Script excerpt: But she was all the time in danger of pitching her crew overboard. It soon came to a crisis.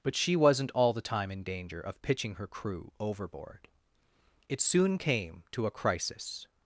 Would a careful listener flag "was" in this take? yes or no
yes